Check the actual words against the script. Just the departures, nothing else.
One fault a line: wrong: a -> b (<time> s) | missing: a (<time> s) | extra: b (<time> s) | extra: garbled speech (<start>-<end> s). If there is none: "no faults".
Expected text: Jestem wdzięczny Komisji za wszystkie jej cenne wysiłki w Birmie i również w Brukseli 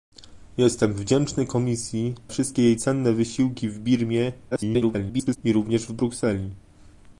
missing: za (2.1 s)
extra: garbled speech (4.5-5.4 s)